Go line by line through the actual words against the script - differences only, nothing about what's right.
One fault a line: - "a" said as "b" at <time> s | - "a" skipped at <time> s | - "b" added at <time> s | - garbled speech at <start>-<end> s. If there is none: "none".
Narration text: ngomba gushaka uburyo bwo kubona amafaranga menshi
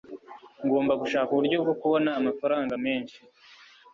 none